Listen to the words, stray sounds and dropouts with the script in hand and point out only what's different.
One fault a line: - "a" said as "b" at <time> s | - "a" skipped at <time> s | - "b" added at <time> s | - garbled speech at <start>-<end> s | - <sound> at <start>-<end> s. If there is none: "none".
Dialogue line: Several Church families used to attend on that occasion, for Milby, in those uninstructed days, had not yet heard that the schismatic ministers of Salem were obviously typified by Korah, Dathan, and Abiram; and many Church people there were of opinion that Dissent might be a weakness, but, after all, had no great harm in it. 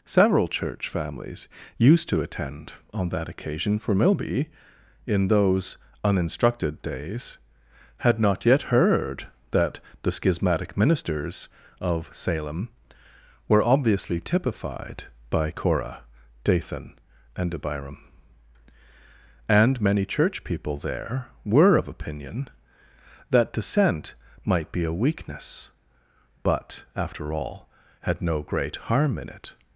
none